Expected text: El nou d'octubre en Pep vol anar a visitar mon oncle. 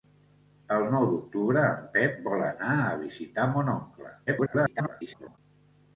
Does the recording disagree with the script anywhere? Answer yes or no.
yes